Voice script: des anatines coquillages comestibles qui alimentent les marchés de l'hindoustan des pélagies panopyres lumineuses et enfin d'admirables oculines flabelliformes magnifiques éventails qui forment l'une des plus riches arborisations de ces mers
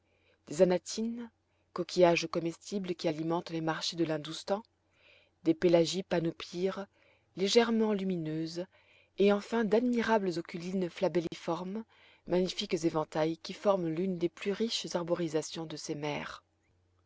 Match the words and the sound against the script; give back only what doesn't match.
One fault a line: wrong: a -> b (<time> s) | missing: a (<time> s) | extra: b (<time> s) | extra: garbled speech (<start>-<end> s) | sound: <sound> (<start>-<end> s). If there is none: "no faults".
extra: légèrement (7.4 s)
sound: dropout (11.3-11.3 s)